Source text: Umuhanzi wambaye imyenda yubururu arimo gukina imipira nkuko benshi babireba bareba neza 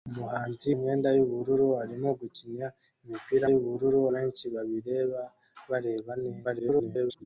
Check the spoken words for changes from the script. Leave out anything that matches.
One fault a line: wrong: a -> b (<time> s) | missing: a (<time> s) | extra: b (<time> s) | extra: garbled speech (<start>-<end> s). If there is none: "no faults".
missing: wambaye (0.7 s)
wrong: nkuko -> yubururu (3.5 s)
extra: garbled speech (6.4-7.3 s)